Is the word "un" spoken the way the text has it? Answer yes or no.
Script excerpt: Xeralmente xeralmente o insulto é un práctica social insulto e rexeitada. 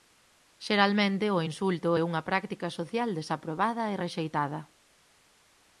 no